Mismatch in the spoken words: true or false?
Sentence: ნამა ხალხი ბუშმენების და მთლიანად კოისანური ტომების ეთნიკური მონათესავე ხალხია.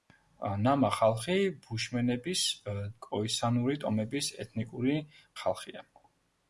true